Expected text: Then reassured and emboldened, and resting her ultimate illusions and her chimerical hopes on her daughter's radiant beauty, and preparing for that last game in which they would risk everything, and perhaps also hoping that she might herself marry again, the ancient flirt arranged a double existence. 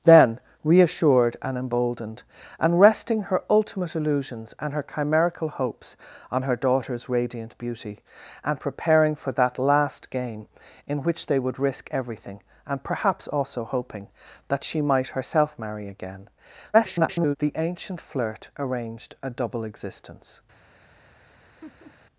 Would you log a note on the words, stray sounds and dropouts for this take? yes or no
yes